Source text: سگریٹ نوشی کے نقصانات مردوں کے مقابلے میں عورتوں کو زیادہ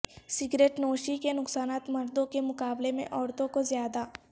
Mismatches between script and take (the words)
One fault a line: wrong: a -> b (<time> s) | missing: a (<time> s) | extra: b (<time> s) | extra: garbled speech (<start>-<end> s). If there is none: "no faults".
no faults